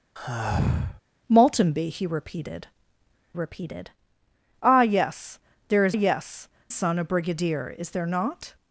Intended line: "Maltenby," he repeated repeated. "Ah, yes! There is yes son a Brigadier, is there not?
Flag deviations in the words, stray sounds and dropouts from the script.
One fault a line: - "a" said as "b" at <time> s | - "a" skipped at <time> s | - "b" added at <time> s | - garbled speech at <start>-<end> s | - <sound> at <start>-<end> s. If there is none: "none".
- sigh at 0.2-1.0 s